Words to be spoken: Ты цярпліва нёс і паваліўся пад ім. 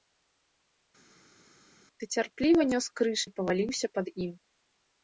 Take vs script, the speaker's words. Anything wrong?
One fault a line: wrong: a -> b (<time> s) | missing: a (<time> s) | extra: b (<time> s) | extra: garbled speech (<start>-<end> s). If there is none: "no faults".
extra: крыж (3.0 s)